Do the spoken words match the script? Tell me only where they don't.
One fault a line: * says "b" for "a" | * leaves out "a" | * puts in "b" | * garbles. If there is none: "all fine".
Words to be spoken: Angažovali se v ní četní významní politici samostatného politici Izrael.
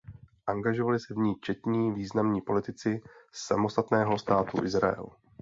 * says "státu" for "politici"